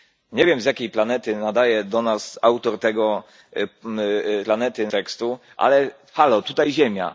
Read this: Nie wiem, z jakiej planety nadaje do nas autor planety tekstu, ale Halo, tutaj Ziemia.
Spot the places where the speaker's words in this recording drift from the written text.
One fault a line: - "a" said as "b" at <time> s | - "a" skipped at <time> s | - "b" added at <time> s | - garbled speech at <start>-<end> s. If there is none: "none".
none